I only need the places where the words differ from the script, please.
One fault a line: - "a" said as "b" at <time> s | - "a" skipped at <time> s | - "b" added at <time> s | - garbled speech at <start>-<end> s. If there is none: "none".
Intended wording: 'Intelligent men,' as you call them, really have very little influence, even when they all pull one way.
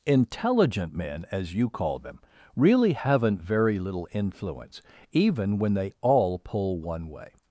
- "have" said as "haven't" at 2.9 s